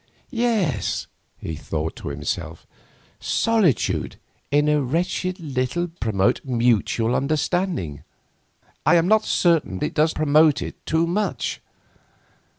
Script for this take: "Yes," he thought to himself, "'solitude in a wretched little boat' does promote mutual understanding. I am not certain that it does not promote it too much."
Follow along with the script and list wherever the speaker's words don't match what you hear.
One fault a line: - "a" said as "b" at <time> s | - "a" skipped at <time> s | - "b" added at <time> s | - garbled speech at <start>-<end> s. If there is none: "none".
- "boat does" skipped at 5.9 s
- "that" skipped at 9.8 s
- "not" skipped at 10.2 s